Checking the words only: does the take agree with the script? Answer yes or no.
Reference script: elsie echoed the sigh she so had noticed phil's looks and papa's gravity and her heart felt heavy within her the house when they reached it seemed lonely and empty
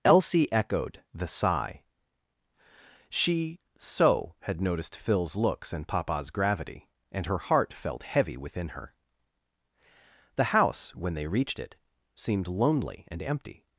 yes